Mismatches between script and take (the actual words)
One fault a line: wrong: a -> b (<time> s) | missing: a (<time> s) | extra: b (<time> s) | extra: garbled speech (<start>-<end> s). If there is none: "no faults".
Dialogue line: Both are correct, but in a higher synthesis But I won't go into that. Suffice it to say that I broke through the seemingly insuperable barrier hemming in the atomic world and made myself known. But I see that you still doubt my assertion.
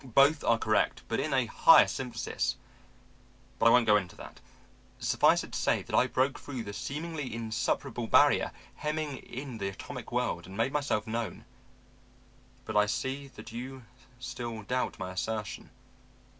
no faults